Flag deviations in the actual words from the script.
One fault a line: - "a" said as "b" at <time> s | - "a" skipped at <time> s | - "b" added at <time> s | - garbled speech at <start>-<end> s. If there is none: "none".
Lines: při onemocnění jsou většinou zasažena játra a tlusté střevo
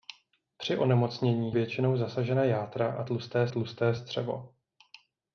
- "jsou" skipped at 1.6 s
- "tlusté" added at 3.5 s